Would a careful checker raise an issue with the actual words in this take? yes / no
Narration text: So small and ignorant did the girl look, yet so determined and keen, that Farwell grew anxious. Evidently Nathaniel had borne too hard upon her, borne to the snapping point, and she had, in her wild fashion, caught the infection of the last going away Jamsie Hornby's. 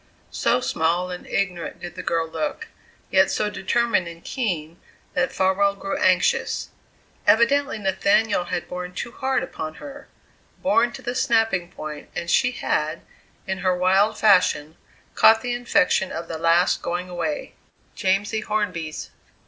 no